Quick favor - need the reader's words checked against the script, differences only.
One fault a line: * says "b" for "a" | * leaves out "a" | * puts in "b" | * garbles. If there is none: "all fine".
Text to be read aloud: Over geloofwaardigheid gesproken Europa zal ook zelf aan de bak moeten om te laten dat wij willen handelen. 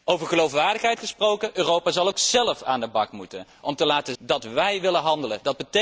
all fine